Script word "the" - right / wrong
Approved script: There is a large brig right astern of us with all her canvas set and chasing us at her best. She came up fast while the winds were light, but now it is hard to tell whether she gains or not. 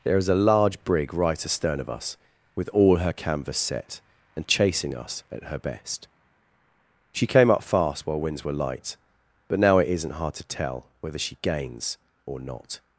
wrong